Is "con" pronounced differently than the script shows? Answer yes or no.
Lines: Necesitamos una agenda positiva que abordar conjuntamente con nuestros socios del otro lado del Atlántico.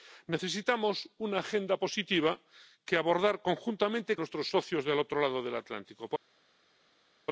yes